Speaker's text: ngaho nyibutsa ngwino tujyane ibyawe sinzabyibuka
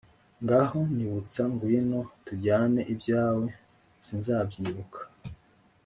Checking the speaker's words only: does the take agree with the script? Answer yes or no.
yes